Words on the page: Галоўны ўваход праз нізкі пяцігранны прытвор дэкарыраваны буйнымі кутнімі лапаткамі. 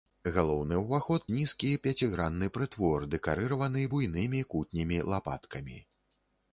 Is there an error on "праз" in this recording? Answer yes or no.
yes